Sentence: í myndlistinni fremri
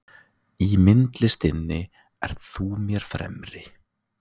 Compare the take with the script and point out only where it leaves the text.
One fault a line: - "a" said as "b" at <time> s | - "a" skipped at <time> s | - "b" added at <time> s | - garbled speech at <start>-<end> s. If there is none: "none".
- "ert þú mér" added at 2.3 s